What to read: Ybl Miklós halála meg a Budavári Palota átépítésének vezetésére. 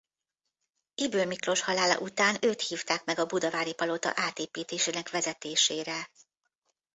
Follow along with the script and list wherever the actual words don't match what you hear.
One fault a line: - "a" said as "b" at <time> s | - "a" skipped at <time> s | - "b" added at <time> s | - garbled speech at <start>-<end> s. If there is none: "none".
- "után őt hívták" added at 2.0 s